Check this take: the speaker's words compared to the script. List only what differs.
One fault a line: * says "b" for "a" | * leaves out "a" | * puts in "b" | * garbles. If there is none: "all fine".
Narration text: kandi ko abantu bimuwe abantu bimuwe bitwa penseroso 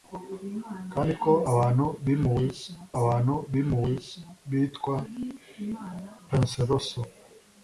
all fine